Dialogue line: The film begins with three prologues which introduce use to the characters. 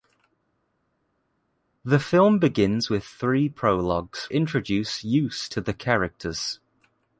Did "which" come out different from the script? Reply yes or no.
yes